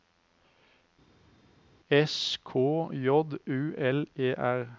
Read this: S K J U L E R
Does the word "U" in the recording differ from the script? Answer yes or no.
no